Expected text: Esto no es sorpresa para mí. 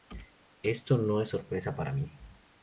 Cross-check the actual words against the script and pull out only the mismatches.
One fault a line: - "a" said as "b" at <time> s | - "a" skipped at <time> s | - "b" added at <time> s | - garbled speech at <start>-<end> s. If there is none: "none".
none